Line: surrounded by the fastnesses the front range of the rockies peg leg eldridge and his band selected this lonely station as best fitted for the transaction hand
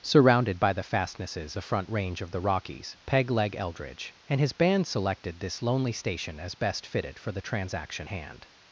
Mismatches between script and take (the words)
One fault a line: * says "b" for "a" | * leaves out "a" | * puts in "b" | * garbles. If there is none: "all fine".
all fine